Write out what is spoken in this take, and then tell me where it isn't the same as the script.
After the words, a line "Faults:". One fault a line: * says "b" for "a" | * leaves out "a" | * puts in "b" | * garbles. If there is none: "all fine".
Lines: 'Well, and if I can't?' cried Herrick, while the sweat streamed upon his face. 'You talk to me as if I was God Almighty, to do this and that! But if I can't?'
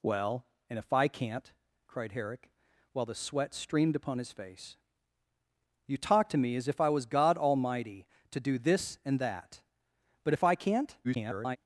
'Well, and if I can't?' cried Herrick, while the sweat streamed upon his face. 'You talk to me as if I was God Almighty, to do this and that! But if I can't?' [garbled]
Faults:
* garbles